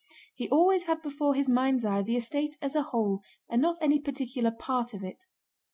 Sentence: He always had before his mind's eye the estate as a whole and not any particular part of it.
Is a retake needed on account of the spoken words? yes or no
no